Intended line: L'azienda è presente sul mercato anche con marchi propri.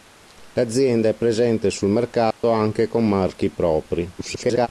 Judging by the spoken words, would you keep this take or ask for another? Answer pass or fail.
fail